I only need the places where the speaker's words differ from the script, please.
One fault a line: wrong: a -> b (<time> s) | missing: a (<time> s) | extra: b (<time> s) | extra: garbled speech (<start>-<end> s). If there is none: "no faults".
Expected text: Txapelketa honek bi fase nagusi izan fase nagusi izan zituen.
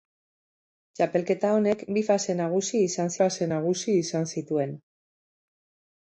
no faults